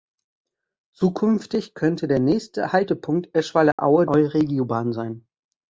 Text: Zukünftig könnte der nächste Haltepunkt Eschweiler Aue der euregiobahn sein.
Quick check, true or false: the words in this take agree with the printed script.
false